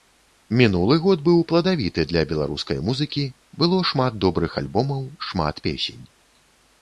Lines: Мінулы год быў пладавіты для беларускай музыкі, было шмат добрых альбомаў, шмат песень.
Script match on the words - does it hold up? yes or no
yes